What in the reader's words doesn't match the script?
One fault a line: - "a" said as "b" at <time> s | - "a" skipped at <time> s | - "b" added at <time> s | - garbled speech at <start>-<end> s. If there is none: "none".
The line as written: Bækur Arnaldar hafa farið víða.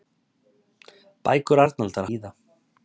- "hafa farið" skipped at 2.1 s